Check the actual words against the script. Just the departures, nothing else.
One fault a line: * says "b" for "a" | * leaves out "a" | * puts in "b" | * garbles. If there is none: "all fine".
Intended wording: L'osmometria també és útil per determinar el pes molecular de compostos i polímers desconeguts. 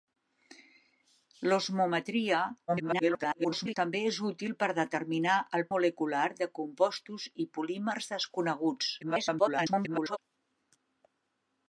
* garbles
* leaves out "pes"
* garbles